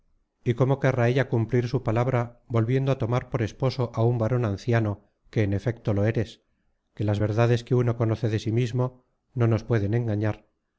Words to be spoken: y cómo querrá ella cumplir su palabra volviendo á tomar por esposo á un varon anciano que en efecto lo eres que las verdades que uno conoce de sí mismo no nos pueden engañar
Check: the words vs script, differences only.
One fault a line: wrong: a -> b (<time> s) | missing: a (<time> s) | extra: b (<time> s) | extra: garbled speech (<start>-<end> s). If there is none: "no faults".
no faults